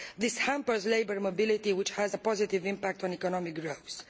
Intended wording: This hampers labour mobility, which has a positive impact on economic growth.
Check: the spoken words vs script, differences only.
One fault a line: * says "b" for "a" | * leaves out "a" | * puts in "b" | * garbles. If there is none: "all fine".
all fine